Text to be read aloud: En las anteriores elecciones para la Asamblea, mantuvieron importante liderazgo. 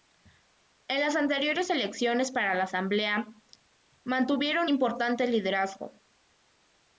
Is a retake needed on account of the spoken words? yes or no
no